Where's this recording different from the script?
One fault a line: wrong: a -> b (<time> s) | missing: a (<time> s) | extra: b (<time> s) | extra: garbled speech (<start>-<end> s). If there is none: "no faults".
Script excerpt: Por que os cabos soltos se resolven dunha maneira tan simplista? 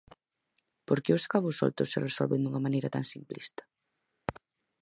no faults